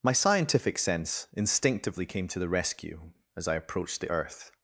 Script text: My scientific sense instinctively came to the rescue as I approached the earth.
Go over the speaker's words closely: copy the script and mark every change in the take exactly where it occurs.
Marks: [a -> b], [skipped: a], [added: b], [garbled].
My scientific sense instinctively came to the rescue as I approached the earth.